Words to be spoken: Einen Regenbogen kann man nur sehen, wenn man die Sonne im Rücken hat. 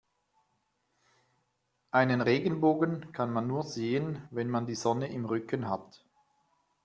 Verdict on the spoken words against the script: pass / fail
pass